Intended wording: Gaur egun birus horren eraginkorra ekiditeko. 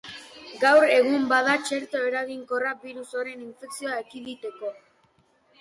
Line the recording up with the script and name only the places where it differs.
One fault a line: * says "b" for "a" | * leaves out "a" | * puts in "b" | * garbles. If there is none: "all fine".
* puts in "bada txerto eraginkorra"
* says "infekzioa" for "eraginkorra"